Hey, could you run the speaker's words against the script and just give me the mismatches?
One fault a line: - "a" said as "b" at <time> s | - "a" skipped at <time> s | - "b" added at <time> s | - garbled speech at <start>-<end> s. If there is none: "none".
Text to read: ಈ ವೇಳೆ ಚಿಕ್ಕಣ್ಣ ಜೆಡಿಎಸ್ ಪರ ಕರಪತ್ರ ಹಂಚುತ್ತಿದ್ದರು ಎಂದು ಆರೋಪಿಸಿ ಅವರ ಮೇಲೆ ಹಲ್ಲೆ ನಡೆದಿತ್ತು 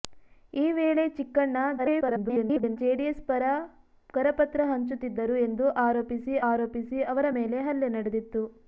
- garbled speech at 1.8-2.8 s
- "ಆರೋಪಿಸಿ" added at 6.5 s